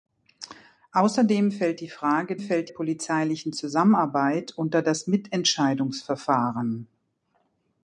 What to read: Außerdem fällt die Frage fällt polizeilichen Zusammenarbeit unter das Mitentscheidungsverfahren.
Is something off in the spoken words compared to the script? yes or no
no